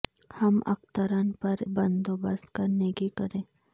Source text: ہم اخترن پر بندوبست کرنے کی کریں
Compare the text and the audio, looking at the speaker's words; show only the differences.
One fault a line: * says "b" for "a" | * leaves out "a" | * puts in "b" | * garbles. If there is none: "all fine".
all fine